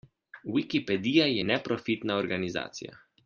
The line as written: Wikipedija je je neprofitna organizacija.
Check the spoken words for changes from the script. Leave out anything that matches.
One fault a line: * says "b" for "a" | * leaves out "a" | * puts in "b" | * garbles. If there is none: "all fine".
* leaves out "je"